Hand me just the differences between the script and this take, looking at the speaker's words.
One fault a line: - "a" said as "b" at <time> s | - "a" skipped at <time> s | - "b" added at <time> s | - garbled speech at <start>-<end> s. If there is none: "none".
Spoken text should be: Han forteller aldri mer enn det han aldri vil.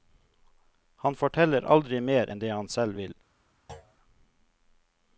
- "aldri" said as "selv" at 2.7 s